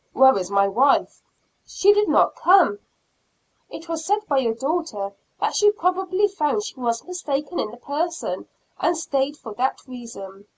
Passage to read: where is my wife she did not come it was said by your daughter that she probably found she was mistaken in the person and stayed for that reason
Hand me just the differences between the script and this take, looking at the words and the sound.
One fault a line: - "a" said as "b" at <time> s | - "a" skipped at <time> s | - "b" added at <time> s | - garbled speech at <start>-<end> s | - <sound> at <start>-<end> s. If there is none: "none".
none